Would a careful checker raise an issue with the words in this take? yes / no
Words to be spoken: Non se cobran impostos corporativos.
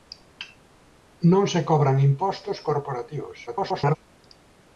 yes